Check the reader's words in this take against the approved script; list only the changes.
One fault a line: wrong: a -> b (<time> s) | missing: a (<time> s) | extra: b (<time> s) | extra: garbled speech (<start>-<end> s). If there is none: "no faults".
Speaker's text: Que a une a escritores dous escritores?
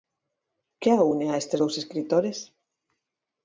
wrong: escritores -> estes (1.4 s)